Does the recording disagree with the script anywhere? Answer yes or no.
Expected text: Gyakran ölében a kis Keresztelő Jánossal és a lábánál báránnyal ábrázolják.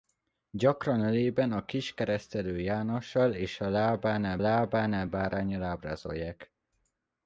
yes